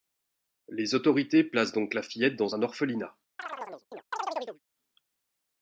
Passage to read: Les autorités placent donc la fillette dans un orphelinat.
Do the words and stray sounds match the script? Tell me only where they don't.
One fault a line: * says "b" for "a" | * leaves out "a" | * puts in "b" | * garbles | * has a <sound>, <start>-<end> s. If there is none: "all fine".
* has a chirp, 3.4-4.6 s